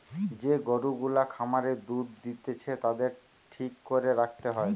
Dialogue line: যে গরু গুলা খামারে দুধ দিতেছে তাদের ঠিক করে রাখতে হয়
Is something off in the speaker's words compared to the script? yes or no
no